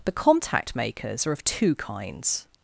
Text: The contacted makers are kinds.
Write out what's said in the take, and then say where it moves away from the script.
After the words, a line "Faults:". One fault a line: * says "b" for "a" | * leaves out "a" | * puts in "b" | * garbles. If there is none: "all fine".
The contact makers are of two kinds.
Faults:
* says "contact" for "contacted"
* puts in "of two"